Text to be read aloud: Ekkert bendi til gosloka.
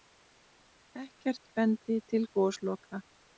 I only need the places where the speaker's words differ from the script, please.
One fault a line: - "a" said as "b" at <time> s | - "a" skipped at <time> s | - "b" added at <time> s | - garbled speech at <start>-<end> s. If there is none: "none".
none